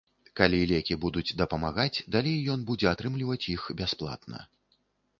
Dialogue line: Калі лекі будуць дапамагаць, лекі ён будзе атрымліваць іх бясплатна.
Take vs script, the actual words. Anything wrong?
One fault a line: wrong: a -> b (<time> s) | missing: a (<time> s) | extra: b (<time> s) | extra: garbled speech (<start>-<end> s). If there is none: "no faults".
wrong: лекі -> далей (2.2 s)